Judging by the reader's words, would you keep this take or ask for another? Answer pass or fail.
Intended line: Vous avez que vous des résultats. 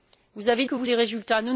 pass